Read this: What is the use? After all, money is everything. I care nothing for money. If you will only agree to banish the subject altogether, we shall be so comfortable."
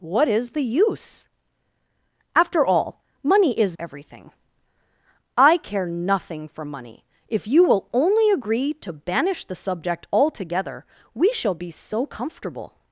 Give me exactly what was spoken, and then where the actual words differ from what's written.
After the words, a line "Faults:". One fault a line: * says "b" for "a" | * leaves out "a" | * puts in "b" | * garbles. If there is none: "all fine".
What is the use? After all, money is everything. I care nothing for money. If you will only agree to banish the subject altogether, we shall be so comfortable."
Faults:
all fine